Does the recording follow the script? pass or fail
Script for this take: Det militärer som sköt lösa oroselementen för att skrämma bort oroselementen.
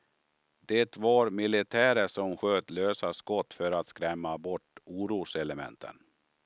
fail